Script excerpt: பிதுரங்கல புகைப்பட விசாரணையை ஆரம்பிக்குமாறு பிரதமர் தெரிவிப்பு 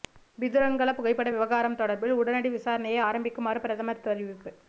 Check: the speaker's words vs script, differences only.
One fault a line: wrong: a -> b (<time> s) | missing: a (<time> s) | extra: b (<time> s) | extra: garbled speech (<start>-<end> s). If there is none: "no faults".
extra: விவகாரம் தொடர்பில் உடனடி (1.3 s)